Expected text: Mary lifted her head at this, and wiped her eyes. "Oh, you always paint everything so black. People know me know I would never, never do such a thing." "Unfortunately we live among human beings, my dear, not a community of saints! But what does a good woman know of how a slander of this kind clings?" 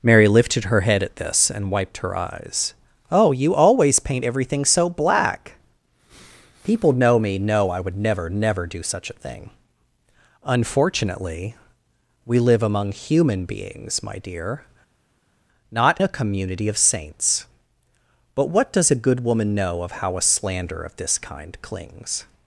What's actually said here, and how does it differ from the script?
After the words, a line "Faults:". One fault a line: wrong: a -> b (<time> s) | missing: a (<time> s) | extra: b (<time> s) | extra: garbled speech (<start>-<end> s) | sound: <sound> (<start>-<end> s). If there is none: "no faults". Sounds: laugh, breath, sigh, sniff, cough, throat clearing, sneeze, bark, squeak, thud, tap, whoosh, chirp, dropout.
Mary lifted her head at this, and wiped her eyes. "Oh, you always paint everything so black. People know me know I would never, never do such a thing." "Unfortunately we live among human beings, my dear, not a community of saints! But what does a good woman know of how a slander of this kind clings?"
Faults:
no faults